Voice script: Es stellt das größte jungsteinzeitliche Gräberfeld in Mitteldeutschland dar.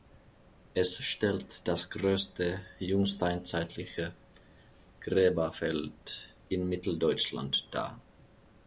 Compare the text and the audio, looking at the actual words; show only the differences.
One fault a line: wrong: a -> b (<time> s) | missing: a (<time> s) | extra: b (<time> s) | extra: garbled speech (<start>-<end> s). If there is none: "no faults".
no faults